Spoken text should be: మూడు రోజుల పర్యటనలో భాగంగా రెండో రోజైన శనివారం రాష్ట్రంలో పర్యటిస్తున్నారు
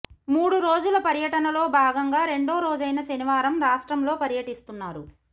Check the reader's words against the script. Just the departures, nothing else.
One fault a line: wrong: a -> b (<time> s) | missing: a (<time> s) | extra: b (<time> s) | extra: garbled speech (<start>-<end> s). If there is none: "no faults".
no faults